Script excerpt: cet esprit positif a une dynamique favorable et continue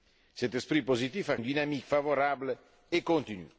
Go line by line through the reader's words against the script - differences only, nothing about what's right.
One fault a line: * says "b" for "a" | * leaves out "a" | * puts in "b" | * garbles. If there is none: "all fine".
all fine